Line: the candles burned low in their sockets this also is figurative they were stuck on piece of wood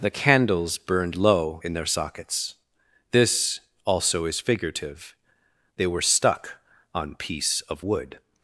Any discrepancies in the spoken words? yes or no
no